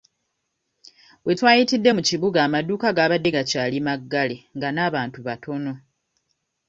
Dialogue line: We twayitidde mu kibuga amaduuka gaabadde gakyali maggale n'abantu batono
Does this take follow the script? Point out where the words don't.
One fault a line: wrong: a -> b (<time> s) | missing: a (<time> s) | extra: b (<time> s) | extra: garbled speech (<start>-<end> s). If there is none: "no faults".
extra: nga (4.6 s)